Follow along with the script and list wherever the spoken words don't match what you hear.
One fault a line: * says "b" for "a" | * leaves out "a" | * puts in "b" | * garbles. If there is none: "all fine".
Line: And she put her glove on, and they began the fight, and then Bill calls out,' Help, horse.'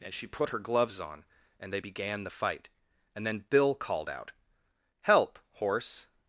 * says "gloves" for "glove"
* says "called" for "calls"